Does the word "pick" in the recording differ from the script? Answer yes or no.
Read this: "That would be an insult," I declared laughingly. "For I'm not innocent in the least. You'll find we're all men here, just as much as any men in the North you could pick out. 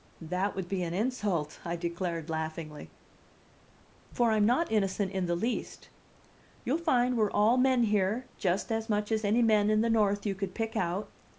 no